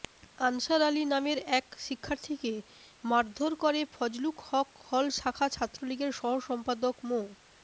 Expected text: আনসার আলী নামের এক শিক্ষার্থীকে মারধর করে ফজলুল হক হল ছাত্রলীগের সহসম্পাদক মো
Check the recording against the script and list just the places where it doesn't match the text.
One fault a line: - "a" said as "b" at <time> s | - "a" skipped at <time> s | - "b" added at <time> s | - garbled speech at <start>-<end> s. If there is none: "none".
- "শাখা" added at 5.2 s